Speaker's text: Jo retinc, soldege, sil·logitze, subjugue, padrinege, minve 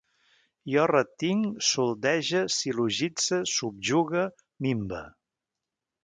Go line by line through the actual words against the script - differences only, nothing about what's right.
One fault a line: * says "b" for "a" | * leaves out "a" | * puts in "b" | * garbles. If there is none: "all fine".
* leaves out "padrinege"